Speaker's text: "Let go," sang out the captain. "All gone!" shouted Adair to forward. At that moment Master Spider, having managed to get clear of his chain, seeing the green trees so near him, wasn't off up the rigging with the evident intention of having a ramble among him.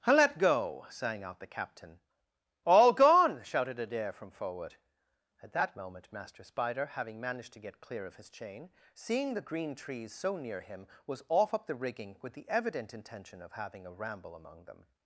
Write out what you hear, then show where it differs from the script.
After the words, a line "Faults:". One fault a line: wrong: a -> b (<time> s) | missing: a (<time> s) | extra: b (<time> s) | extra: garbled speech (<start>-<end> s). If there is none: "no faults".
"Let go," sang out the captain. "All gone!" shouted Adair from forward. At that moment Master Spider, having managed to get clear of his chain, seeing the green trees so near him, was off up the rigging with the evident intention of having a ramble among them.
Faults:
wrong: to -> from (4.1 s)
wrong: wasn't -> was (11.1 s)
wrong: him -> them (14.7 s)